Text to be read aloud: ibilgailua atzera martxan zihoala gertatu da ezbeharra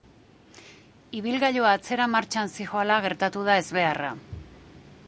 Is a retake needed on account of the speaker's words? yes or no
no